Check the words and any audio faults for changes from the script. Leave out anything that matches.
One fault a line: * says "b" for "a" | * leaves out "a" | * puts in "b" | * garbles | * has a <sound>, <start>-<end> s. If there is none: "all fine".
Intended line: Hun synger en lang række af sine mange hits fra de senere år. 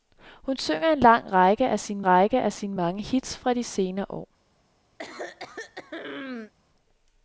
* puts in "række af sine"
* has a throat clearing, 5.0-6.5 s